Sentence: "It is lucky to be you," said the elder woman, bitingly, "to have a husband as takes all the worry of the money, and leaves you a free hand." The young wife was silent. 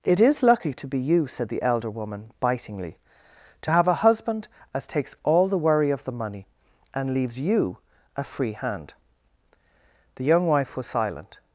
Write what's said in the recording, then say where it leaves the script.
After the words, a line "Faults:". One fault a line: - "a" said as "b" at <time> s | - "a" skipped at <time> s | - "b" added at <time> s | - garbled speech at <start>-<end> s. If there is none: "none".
"It is lucky to be you," said the elder woman, bitingly, "to have a husband as takes all the worry of the money, and leaves you a free hand." The young wife was silent.
Faults:
none